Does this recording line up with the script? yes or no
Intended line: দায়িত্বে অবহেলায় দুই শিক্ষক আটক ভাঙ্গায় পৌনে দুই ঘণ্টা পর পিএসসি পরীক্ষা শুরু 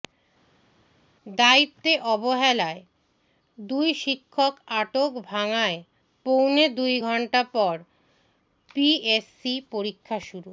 yes